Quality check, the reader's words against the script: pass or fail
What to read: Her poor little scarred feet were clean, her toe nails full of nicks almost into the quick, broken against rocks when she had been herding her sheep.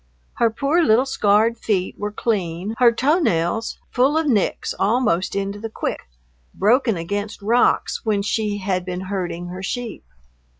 pass